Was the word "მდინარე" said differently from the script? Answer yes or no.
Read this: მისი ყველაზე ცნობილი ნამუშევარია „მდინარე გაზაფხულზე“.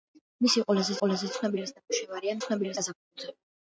yes